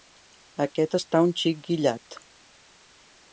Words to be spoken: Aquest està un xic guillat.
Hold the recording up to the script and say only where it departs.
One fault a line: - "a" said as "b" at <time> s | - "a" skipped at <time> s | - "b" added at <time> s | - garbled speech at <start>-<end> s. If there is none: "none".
none